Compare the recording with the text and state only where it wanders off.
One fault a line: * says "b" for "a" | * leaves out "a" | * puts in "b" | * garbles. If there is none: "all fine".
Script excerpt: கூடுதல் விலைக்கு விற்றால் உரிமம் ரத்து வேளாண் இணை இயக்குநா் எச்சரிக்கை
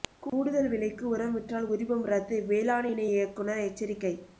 * puts in "உரம்"